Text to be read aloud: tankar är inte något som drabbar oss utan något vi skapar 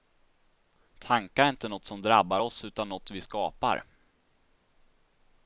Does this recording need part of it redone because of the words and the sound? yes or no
no